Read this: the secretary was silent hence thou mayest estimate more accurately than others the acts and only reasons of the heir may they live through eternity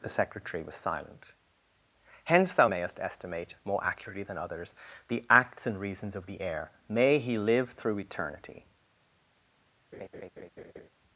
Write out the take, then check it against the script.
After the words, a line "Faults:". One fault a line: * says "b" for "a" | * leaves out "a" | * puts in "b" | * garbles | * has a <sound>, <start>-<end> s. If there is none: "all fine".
the secretary was silent hence thou mayest estimate more accurately than others the acts and reasons of the heir may he live through eternity
Faults:
* leaves out "only"
* says "he" for "they"
* has a laugh, 9.9-10.9 s